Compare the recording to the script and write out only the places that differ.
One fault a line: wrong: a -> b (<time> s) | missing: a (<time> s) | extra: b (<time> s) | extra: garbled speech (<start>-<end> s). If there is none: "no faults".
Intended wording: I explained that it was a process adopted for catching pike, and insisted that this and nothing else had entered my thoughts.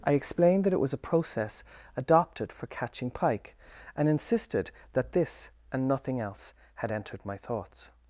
no faults